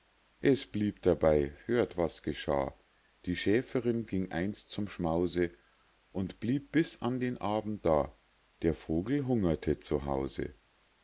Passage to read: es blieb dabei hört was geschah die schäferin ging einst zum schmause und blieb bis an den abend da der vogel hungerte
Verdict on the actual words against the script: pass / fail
pass